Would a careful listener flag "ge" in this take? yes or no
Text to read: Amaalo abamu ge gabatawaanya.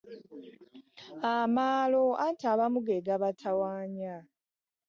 no